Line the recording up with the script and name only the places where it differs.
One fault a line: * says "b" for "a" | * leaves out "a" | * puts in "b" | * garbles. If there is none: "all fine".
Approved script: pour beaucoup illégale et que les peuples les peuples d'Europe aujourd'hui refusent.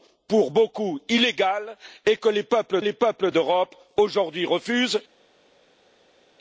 all fine